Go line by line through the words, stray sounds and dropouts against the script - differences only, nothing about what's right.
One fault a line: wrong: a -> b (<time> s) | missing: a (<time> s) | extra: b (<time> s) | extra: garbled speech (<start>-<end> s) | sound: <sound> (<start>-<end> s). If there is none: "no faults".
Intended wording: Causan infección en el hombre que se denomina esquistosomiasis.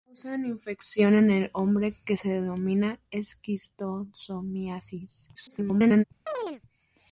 extra: garbled speech (5.3-6.0 s)
sound: chirp (6.3-6.6 s)